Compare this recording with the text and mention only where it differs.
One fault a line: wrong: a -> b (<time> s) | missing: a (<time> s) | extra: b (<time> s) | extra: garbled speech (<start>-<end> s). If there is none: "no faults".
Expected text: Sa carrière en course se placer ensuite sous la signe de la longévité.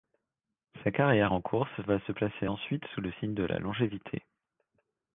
extra: va (1.8 s)
wrong: la -> le (3.0 s)